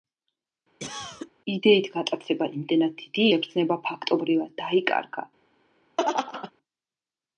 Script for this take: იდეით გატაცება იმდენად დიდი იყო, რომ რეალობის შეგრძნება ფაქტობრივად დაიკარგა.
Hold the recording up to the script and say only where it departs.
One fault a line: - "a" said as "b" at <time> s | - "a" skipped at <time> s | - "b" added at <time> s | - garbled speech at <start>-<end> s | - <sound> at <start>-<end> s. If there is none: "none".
- cough at 0.8-1.3 s
- "იყო რომ რეალობის" skipped at 3.2 s
- laugh at 6.0-6.5 s